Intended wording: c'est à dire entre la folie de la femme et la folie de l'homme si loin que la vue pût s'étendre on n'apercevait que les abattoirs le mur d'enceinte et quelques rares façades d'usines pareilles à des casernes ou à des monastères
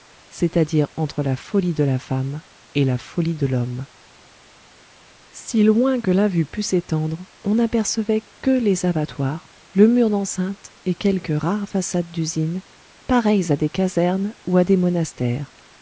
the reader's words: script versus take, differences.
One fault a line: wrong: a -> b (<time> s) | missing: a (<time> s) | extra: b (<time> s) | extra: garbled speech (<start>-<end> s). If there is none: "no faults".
no faults